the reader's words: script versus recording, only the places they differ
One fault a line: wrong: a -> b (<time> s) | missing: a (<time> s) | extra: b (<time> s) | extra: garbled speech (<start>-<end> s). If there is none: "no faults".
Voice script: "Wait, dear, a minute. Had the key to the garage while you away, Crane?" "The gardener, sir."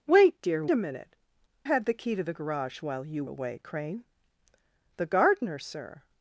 no faults